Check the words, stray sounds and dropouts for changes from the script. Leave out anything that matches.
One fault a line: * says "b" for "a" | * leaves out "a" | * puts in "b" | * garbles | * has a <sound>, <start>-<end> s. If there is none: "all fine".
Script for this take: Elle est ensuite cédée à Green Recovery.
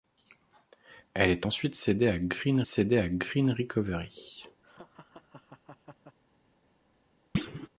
* puts in "cédée à Green"
* has a laugh, 4.6-6.2 s
* has a thud, 7.3-7.7 s